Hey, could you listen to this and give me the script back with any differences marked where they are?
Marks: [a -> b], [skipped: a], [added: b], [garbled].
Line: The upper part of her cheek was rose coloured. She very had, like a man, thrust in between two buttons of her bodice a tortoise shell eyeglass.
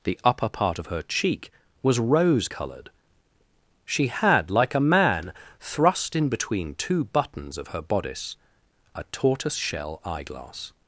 The upper part of her cheek was rose coloured. She [skipped: very] had, like a man, thrust in between two buttons of her bodice a tortoise shell eyeglass.